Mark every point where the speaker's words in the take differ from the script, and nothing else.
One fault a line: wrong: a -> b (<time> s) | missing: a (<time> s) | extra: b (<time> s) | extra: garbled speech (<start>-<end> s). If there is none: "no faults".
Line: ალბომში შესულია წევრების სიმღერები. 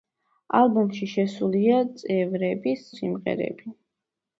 no faults